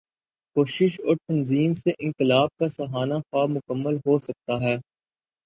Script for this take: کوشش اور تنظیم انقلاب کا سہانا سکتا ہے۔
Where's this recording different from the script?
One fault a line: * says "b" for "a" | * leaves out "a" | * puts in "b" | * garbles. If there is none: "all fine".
* puts in "سے"
* puts in "خواب مکمل ہو"